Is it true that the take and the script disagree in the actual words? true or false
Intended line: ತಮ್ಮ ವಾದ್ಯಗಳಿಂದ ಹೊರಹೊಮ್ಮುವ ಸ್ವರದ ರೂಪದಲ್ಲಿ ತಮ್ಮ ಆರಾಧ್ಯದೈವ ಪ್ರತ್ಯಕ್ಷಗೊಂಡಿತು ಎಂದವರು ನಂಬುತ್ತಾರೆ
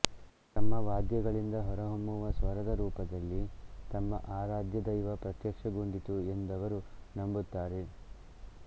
false